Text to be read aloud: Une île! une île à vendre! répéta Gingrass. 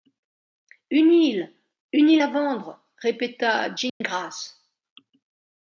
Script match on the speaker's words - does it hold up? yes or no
yes